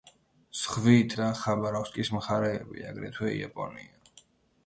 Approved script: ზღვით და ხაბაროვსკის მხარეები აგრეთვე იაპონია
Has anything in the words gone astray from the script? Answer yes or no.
no